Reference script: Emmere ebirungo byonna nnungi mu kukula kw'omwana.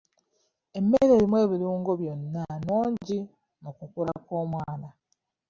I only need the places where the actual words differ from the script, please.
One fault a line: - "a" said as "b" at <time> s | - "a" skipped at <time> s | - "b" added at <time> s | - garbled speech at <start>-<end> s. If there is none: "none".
- "erimu" added at 1.1 s